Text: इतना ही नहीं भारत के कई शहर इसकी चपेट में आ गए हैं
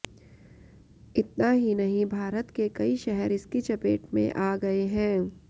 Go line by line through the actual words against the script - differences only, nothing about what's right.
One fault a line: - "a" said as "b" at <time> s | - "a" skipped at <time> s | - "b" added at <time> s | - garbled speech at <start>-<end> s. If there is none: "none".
none